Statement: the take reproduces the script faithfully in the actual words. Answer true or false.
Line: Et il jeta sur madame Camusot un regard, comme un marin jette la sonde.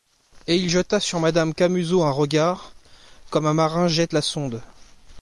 true